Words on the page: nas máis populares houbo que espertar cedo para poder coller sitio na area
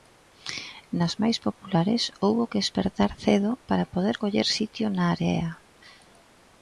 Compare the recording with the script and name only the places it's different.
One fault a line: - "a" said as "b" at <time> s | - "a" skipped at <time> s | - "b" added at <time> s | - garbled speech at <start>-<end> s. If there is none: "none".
none